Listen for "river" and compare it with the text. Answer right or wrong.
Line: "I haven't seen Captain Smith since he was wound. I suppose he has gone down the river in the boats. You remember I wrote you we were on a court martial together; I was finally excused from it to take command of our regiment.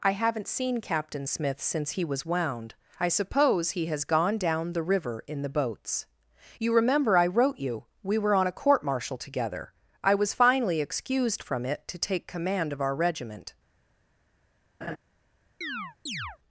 right